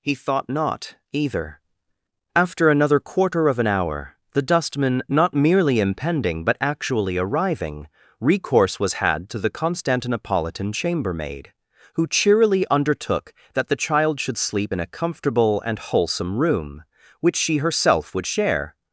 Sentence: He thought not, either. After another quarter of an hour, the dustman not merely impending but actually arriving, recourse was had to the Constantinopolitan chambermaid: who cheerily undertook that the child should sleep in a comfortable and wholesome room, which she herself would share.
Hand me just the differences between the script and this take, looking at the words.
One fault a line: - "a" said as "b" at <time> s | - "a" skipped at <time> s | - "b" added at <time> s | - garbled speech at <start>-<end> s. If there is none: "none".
none